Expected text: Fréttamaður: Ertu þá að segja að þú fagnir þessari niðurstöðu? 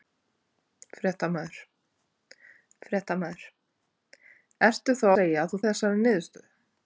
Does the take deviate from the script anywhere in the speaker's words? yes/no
yes